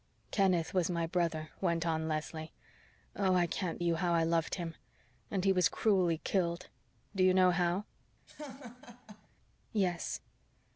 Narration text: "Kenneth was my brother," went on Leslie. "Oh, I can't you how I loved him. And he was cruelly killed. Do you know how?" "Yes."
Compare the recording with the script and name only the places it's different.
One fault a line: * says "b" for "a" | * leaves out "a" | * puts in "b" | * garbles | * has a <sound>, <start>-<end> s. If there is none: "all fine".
* has a laugh, 8.3-9.3 s